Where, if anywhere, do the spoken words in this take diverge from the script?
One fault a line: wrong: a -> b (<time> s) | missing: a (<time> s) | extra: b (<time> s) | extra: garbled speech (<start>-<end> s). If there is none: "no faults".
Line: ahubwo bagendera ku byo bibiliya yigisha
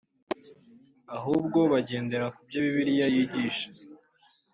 no faults